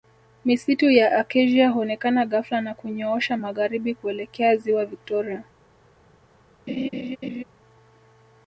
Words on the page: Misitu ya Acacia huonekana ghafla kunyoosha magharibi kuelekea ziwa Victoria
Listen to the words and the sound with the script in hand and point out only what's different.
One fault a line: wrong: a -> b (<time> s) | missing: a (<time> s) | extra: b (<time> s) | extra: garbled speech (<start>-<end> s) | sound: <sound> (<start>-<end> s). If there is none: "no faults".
extra: na (2.6 s)
sound: laugh (6.7-7.4 s)